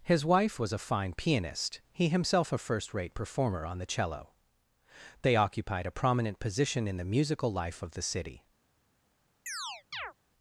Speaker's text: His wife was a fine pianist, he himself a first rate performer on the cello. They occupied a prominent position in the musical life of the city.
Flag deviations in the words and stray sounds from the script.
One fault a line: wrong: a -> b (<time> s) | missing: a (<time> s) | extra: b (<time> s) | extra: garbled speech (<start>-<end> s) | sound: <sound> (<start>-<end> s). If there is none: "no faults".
sound: chirp (9.5-10.1 s)